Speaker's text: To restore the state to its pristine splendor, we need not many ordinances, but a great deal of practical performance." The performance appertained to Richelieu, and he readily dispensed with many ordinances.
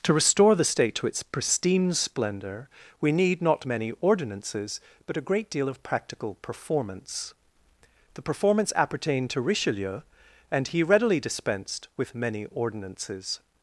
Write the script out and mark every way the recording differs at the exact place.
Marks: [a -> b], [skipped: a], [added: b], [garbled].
To restore the state to its pristine splendor, we need not many ordinances, but a great deal of practical performance." The performance appertained to Richelieu, and he readily dispensed with many ordinances.